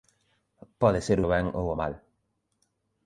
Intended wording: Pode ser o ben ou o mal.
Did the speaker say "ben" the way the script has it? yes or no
yes